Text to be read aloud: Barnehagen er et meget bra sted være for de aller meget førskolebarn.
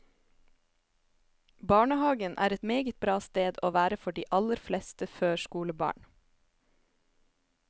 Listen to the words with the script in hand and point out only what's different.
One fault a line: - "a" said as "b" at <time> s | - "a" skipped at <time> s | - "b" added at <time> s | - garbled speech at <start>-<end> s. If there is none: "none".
- "å" added at 3.6 s
- "meget" said as "fleste" at 4.7 s